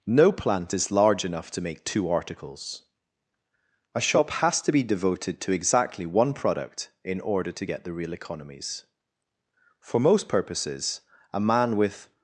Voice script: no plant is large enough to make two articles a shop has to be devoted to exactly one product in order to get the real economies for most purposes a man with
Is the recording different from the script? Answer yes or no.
no